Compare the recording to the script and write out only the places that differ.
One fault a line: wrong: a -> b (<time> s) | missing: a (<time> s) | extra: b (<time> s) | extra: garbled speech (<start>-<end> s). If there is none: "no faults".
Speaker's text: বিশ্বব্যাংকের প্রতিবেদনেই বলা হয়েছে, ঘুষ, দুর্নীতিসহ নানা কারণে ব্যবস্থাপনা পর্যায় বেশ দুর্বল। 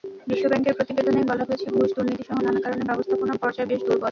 no faults